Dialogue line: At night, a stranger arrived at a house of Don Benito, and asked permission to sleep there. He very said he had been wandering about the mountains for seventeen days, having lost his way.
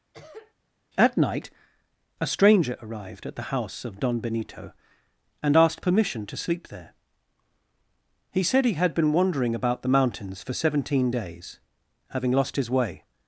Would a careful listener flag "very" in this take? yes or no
yes